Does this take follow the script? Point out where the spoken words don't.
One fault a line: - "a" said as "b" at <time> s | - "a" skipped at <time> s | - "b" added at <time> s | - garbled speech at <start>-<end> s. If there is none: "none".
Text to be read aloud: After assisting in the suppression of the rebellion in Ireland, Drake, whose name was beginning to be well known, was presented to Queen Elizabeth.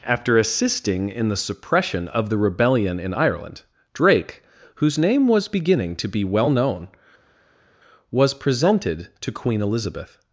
none